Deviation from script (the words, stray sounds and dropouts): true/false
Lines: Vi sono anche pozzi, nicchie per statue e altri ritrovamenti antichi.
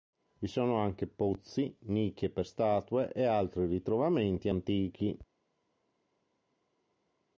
false